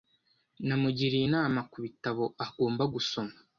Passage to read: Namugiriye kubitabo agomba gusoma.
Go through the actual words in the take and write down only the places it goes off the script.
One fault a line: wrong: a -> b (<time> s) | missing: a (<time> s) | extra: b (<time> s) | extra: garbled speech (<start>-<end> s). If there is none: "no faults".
extra: inama (1.3 s)